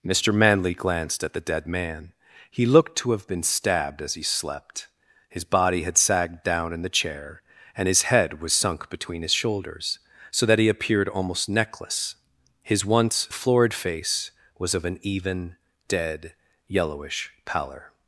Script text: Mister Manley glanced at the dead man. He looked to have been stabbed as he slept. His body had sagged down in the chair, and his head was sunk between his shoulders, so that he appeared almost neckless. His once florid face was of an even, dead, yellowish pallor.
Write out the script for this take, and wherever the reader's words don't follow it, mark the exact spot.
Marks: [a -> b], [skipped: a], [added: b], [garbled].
Mister Manley glanced at the dead man. He looked to have been stabbed as he slept. His body had sagged down in the chair, and his head was sunk between his shoulders, so that he appeared almost neckless. His once florid face was of an even, dead, yellowish pallor.